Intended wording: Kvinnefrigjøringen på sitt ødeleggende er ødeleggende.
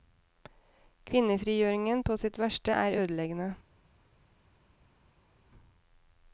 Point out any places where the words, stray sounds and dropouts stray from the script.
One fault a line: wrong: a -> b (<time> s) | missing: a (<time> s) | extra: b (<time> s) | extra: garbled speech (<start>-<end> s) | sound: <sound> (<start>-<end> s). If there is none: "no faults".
wrong: ødeleggende -> verste (2.5 s)